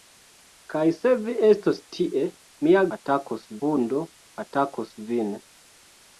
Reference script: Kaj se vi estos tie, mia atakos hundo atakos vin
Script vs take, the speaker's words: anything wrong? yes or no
no